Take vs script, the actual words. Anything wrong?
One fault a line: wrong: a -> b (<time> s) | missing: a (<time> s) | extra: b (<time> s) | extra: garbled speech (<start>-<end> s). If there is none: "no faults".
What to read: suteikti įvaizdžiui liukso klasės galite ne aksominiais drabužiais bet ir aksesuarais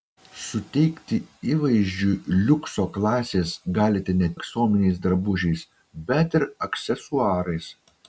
no faults